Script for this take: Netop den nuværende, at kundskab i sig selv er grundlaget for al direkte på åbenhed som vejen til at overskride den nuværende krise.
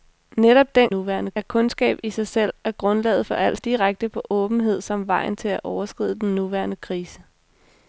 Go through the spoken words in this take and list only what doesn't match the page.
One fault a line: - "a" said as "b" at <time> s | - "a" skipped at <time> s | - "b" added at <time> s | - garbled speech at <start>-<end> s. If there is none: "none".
none